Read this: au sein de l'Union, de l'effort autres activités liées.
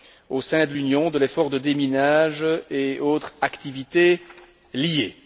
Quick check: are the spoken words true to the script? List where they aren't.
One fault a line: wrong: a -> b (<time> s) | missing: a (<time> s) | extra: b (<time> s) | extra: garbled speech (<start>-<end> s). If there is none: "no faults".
extra: de déminage et (1.5 s)